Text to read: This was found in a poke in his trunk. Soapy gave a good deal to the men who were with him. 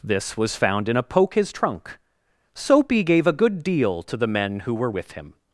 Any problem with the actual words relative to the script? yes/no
yes